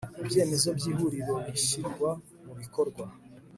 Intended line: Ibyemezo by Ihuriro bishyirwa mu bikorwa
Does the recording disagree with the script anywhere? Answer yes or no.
no